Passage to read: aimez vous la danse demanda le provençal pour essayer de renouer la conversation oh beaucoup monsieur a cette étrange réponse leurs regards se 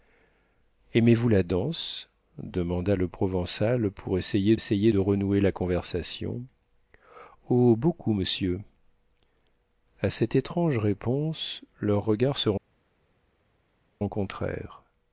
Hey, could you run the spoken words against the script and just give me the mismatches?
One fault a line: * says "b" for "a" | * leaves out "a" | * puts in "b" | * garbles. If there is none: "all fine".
* puts in "essayer"